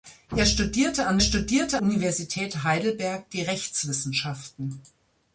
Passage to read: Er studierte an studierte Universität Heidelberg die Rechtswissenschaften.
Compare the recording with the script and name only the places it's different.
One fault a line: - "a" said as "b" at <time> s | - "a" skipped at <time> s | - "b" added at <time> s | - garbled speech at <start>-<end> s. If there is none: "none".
none